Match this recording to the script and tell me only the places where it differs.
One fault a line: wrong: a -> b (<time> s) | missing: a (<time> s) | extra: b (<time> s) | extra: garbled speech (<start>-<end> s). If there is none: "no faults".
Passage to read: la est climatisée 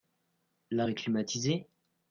no faults